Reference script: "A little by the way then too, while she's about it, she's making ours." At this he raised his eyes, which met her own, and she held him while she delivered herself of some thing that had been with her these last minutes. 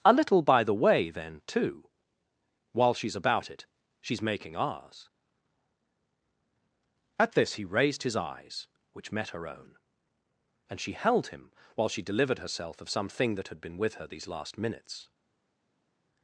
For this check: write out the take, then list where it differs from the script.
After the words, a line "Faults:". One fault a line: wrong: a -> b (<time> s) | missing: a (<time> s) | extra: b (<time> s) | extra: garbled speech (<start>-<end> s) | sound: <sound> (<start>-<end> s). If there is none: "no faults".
"A little by the way then too, while she's about it, she's making ours." At this he raised his eyes, which met her own, and she held him while she delivered herself of some thing that had been with her these last minutes.
Faults:
no faults